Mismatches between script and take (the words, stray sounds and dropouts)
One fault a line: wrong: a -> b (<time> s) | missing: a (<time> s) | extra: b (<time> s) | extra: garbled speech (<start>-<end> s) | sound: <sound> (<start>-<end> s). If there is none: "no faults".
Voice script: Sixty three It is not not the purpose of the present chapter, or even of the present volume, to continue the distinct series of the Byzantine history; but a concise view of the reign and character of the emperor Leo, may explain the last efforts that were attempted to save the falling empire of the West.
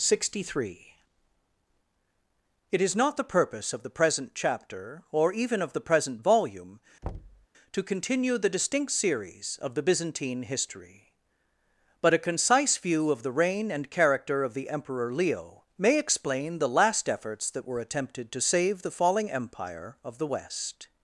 missing: not (3.2 s)
sound: thud (7.0-7.5 s)